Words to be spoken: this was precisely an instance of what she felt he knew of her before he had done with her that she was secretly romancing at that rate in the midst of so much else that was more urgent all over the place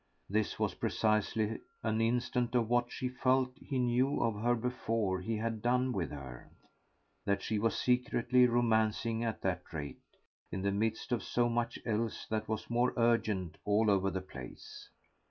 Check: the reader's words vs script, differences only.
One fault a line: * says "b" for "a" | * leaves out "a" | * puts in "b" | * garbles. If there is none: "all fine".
all fine